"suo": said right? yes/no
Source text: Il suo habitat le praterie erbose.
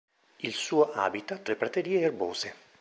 yes